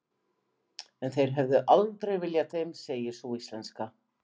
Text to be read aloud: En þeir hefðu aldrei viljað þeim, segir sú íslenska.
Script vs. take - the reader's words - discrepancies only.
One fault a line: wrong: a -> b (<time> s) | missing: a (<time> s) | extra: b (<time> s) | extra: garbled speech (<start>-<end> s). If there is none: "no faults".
no faults